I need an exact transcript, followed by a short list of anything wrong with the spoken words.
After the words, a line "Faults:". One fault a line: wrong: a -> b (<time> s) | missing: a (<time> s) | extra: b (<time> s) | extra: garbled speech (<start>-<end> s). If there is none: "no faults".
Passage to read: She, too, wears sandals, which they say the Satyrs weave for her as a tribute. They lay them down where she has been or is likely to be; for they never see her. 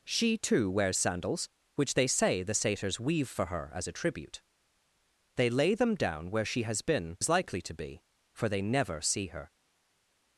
She, too, wears sandals, which they say the Satyrs weave for her as a tribute. They lay them down where she has been is likely to be; for they never see her.
Faults:
missing: or (7.2 s)